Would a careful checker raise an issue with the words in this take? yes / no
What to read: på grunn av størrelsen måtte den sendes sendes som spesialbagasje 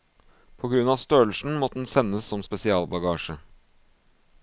yes